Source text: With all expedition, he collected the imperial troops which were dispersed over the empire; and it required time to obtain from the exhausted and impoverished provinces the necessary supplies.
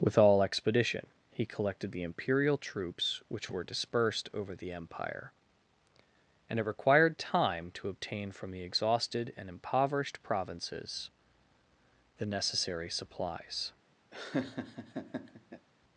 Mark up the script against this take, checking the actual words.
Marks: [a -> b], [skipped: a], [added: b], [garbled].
With all expedition, he collected the imperial troops which were dispersed over the empire; and it required time to obtain from the exhausted and impoverished provinces the necessary supplies.